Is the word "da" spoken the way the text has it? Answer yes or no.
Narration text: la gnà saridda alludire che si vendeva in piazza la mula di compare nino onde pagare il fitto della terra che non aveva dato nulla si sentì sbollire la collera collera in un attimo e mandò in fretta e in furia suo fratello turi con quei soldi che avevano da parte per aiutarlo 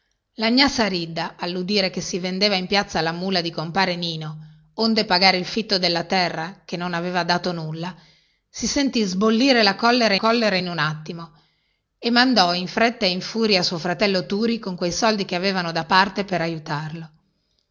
yes